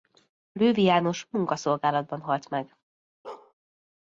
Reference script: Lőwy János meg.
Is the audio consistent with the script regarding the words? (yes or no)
no